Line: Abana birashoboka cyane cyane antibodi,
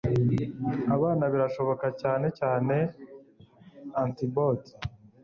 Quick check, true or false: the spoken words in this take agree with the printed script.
true